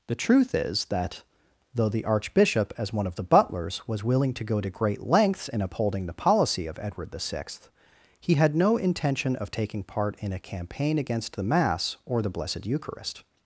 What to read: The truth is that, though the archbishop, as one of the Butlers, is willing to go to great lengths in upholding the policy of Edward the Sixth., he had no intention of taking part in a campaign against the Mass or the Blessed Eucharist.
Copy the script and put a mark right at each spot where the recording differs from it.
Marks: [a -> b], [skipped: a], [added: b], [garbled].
The truth is that, though the archbishop, as one of the Butlers, [is -> was] willing to go to great lengths in upholding the policy of Edward the Sixth., he had no intention of taking part in a campaign against the Mass or the Blessed Eucharist.